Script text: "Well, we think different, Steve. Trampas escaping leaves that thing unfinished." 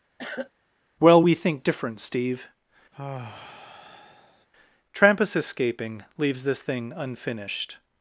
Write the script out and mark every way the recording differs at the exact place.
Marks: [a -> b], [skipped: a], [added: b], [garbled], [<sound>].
[cough] "Well, we think different, Steve. [sigh] Trampas escaping leaves [that -> this] thing unfinished."